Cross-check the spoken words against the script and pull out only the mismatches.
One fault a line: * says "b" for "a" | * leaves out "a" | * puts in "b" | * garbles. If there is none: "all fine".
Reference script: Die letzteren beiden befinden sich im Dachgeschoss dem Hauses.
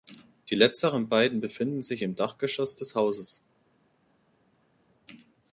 * says "des" for "dem"